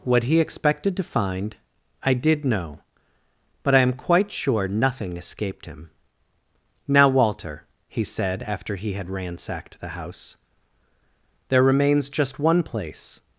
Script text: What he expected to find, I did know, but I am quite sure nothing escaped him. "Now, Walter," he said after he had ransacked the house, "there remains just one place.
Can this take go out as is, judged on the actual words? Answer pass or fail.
pass